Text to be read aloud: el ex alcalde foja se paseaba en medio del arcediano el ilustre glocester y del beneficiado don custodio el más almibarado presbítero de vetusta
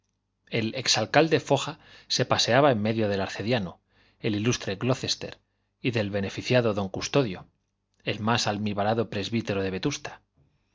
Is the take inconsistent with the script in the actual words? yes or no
no